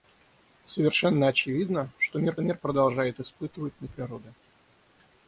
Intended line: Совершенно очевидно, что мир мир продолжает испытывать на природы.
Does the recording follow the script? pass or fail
pass